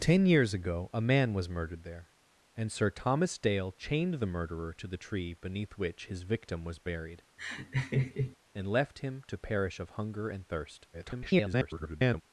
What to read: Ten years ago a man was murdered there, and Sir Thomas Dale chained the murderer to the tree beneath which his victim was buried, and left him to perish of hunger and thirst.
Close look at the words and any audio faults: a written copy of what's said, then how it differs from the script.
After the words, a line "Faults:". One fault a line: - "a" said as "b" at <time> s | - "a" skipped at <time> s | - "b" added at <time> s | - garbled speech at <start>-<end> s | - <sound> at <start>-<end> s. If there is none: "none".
Ten years ago a man was murdered there, and Sir Thomas Dale chained the murderer to the tree beneath which his victim was buried, and left him to perish of hunger and thirst. [garbled]
Faults:
- laugh at 7.4-8.4 s
- garbled speech at 10.9-12.2 s